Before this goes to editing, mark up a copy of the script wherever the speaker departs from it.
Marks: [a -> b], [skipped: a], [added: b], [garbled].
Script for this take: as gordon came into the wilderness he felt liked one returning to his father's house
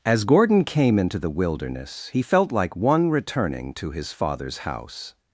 as gordon came into the wilderness he felt [liked -> like] one returning to his father's house